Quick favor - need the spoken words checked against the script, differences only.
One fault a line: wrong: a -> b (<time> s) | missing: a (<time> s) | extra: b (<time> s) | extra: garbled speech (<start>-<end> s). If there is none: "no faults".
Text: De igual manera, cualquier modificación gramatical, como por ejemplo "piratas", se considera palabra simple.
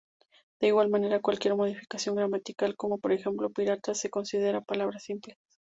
no faults